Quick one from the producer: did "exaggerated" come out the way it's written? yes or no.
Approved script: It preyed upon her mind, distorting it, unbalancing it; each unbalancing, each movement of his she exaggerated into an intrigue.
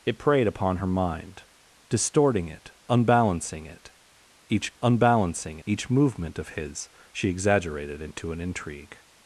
yes